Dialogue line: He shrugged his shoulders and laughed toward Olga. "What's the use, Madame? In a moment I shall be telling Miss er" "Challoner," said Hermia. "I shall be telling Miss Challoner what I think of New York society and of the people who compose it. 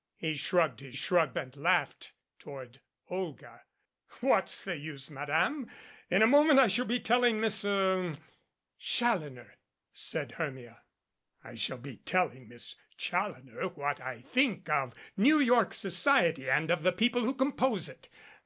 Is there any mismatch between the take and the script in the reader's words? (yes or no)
yes